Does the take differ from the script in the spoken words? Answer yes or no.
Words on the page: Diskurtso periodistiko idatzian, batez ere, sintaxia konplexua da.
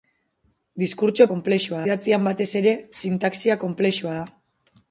yes